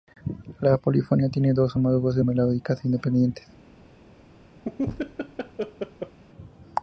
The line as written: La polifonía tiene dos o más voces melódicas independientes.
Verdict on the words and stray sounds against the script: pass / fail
fail